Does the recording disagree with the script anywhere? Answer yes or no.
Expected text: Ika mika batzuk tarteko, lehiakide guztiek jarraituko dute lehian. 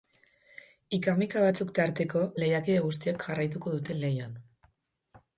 no